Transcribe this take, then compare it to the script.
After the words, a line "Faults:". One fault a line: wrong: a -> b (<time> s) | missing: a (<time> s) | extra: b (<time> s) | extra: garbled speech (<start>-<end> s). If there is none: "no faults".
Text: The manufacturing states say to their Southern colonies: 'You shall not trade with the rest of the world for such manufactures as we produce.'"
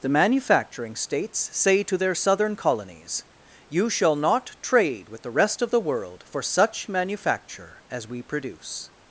The manufacturing states say to their Southern colonies: 'You shall not trade with the rest of the world for such manufacture as we produce.'"
Faults:
wrong: manufactures -> manufacture (6.9 s)